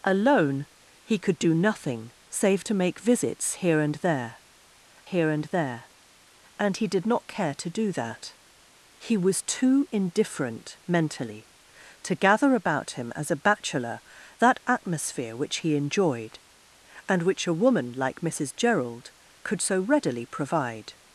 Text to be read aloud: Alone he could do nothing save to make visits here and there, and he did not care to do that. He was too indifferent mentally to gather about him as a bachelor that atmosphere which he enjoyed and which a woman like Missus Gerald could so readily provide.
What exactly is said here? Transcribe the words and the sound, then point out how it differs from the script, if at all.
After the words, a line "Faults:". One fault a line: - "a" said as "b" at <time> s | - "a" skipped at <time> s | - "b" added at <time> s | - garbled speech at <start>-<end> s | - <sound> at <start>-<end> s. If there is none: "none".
Alone he could do nothing save to make visits here and there here and there, and he did not care to do that. He was too indifferent mentally to gather about him as a bachelor that atmosphere which he enjoyed and which a woman like Missus Gerald could so readily provide.
Faults:
- "here and there" added at 5.0 s